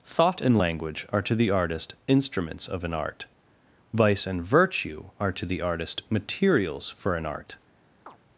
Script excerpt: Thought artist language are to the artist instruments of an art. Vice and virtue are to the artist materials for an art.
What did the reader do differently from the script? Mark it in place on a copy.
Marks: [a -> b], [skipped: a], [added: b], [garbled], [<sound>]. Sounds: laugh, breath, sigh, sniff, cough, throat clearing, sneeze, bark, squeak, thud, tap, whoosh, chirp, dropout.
Thought [artist -> and] language are to the artist instruments of an art. Vice and virtue are to the artist materials for an art. [chirp]